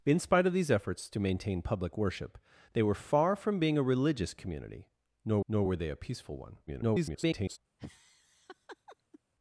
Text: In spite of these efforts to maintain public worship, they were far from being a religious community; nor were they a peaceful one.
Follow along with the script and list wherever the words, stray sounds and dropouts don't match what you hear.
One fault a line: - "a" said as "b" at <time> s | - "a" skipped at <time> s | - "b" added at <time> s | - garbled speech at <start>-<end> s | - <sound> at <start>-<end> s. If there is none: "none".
- "nor" added at 5.5 s
- garbled speech at 6.7-7.6 s
- laugh at 7.8-9.2 s